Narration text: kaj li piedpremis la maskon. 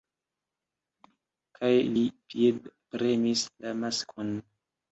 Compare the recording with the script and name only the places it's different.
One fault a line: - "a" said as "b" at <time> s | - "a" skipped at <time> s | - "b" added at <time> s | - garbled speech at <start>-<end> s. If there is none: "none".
none